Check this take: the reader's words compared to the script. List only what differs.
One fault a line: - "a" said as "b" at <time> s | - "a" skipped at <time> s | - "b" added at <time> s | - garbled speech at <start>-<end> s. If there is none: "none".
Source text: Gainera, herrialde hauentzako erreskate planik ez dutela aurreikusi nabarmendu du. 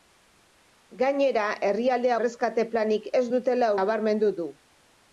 - "hauentzako" skipped at 2.1 s
- "aurreikusi" skipped at 3.7 s